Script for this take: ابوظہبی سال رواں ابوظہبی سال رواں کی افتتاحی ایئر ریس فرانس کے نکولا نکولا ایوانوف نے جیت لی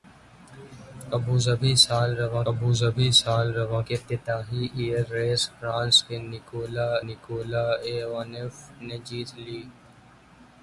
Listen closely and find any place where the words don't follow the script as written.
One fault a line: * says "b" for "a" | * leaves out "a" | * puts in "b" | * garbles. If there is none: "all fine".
all fine